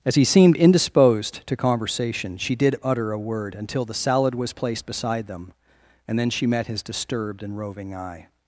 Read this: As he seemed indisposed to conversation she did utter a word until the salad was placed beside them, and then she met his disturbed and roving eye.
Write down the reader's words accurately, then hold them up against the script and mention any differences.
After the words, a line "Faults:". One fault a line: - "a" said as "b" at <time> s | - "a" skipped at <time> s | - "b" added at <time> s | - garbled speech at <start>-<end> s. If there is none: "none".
As he seemed indisposed to conversation she did utter a word until the salad was placed beside them, and then she met his disturbed and roving eye.
Faults:
none